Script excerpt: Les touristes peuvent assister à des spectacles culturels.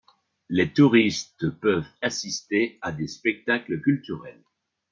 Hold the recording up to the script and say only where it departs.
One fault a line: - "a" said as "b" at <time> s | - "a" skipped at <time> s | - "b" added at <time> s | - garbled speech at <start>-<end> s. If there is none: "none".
none